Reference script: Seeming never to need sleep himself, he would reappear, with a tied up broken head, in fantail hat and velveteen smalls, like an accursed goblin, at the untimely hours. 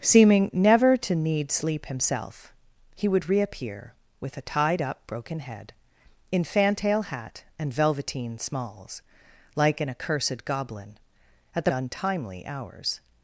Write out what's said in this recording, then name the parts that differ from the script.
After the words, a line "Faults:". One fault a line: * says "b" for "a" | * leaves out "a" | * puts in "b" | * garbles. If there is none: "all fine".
Seeming never to need sleep himself, he would reappear, with a tied up broken head, in fantail hat and velveteen smalls, like an accursed goblin, at the untimely hours.
Faults:
all fine